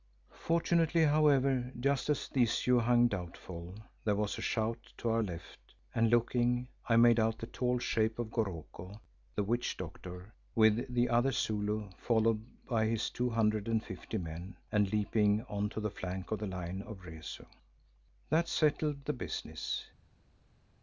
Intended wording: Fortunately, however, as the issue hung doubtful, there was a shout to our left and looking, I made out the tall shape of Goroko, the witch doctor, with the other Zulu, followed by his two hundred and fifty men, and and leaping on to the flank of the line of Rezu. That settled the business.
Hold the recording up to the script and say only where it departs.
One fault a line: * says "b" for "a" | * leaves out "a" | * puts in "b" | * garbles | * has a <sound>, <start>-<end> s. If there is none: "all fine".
* puts in "just"
* leaves out "and"